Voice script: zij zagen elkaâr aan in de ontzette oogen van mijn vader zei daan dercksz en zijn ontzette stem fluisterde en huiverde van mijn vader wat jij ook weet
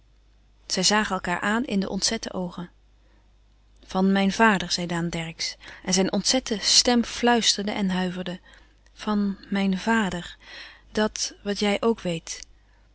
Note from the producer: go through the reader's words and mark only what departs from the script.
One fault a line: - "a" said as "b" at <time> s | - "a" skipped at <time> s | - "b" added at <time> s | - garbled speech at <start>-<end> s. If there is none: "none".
- "dat" added at 10.9 s